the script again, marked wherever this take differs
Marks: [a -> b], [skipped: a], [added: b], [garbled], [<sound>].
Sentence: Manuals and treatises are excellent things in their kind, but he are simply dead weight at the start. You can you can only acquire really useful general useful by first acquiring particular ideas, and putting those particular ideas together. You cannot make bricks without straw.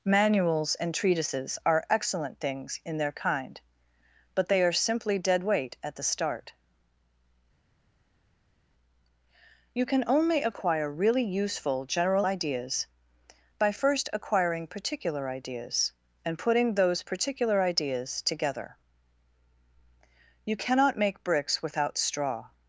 Manuals and treatises are excellent things in their kind, but [he -> they] are simply dead weight at the start. You can [skipped: you can] only acquire really useful general [useful -> ideas] by first acquiring particular ideas, and putting those particular ideas together. You cannot make bricks without straw.